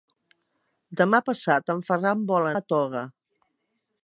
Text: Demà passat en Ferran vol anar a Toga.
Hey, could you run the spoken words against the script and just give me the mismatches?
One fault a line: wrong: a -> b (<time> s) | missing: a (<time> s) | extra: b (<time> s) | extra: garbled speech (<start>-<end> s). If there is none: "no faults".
missing: anar (2.5 s)